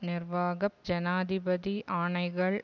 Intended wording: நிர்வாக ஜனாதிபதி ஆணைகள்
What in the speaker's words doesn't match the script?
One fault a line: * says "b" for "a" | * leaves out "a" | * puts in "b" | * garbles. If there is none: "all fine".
all fine